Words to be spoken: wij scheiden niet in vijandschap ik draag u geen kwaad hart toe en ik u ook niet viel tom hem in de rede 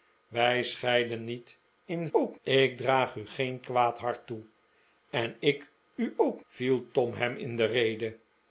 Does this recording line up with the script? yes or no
no